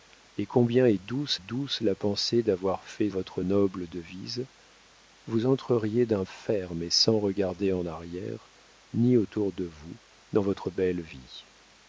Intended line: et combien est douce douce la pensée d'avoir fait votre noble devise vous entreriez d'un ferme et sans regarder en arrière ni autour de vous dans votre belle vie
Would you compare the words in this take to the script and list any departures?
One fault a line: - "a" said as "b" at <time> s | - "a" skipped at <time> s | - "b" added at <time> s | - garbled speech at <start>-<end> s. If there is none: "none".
none